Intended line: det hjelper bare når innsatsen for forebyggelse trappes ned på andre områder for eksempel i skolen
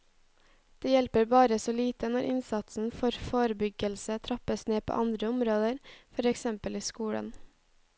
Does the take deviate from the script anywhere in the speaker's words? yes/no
yes